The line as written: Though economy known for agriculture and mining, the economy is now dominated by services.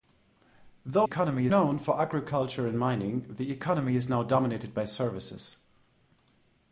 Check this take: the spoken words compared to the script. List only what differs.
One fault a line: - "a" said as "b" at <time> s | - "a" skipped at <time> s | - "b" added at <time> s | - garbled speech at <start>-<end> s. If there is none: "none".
none